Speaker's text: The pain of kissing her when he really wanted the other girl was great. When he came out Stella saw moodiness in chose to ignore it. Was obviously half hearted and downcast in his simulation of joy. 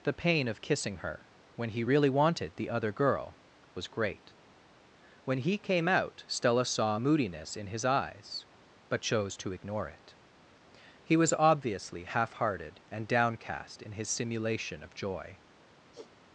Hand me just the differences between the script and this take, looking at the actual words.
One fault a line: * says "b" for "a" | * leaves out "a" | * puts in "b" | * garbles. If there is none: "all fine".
* puts in "his eyes but"
* puts in "He"